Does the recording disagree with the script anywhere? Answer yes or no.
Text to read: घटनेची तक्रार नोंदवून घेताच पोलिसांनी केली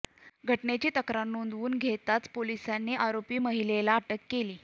yes